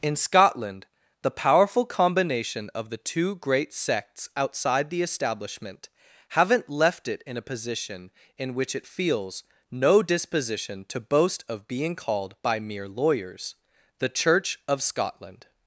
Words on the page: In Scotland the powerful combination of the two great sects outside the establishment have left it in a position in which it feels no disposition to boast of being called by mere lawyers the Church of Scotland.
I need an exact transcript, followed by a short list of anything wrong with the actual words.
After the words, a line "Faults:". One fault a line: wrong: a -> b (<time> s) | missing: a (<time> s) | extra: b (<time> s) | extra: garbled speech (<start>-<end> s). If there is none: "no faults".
In Scotland the powerful combination of the two great sects outside the establishment haven't left it in a position in which it feels no disposition to boast of being called by mere lawyers the Church of Scotland.
Faults:
wrong: have -> haven't (6.3 s)